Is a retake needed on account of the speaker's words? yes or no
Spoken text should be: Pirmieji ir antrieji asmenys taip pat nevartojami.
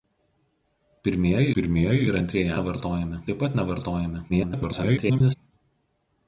yes